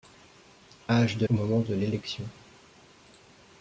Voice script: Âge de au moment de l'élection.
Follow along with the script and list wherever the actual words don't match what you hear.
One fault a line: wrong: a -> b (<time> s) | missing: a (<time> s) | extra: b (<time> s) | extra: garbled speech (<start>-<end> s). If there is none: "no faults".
no faults